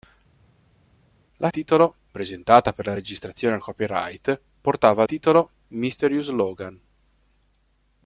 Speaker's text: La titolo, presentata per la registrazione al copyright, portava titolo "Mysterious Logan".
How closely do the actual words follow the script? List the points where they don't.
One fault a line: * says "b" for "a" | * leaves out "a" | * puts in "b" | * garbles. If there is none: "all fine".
all fine